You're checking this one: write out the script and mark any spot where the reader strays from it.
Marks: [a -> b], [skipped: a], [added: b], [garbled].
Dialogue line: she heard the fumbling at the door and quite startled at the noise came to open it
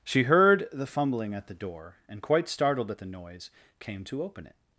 she heard the fumbling at the door and quite startled at the noise came to open it